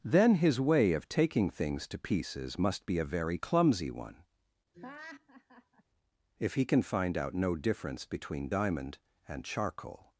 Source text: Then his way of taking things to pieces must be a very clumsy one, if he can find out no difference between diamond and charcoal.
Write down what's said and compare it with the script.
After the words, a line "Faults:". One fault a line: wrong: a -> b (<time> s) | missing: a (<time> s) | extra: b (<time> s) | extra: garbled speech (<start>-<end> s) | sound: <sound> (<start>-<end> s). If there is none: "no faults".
Then his way of taking things to pieces must be a very clumsy one, if he can find out no difference between diamond and charcoal.
Faults:
sound: laugh (4.7-5.8 s)